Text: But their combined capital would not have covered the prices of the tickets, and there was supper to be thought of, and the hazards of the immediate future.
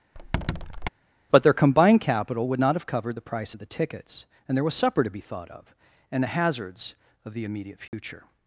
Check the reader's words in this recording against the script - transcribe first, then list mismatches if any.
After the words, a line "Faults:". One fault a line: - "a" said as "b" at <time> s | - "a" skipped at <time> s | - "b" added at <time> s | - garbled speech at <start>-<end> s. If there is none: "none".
But their combined capital would not have covered the price of the tickets, and there was supper to be thought of, and the hazards of the immediate future.
Faults:
- "prices" said as "price" at 3.2 s